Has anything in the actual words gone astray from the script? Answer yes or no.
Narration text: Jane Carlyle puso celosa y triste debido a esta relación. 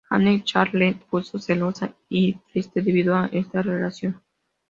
no